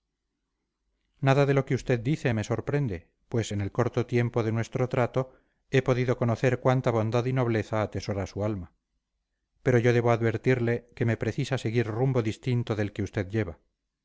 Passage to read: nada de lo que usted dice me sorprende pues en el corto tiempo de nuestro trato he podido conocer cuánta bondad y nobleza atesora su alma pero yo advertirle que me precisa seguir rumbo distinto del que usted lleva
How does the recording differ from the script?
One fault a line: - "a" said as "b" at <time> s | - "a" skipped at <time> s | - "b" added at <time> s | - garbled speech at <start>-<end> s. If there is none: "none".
- "debo" added at 9.9 s